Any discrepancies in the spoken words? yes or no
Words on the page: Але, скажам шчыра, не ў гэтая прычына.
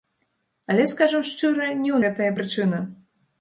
no